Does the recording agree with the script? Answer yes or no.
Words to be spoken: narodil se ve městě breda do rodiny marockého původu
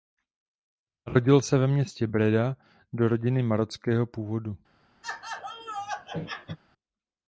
yes